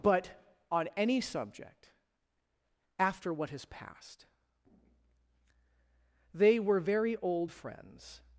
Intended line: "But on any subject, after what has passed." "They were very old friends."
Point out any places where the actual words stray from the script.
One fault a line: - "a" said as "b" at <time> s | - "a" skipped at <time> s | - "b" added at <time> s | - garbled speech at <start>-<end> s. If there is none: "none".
none